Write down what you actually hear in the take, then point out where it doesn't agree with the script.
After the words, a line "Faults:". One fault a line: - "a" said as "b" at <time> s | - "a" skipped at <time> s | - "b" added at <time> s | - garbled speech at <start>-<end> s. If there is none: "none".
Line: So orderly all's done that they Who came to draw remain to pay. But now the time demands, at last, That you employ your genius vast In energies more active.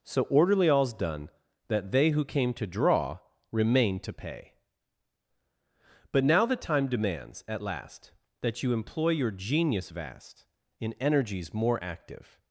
So orderly all's done that they Who came to draw remain to pay. But now the time demands, at last, That you employ your genius vast In energies more active.
Faults:
none